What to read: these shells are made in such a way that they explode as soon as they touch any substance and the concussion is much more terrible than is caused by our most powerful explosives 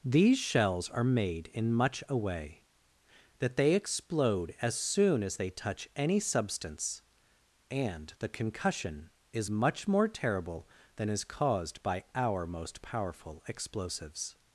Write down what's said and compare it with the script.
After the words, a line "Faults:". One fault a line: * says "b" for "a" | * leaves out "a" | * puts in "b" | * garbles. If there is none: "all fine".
these shells are made in much a way that they explode as soon as they touch any substance and the concussion is much more terrible than is caused by our most powerful explosives
Faults:
* says "much" for "such"